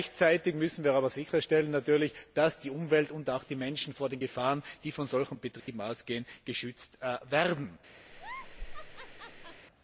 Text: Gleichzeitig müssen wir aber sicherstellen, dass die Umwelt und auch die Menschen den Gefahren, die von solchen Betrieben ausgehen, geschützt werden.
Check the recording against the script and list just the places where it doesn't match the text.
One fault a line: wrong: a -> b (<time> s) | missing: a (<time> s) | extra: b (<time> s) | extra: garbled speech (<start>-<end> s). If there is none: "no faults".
extra: natürlich (1.1 s)
extra: vor (3.9 s)